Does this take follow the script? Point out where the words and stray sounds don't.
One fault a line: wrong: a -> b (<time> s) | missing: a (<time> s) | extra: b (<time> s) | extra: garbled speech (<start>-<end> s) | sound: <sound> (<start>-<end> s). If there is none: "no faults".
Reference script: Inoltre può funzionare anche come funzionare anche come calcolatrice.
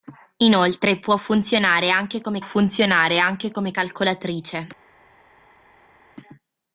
no faults